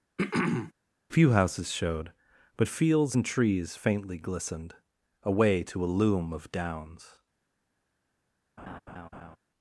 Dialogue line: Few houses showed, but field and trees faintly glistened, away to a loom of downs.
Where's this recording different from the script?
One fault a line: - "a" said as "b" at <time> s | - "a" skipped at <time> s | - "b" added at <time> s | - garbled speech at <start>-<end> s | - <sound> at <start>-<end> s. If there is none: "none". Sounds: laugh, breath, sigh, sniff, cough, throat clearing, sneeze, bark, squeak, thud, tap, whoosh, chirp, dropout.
- throat clearing at 0.2-0.7 s
- "field" said as "fields" at 2.7 s
- laugh at 8.6-9.4 s